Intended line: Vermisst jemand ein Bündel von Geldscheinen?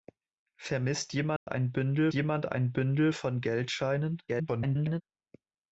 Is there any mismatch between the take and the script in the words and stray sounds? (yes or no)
yes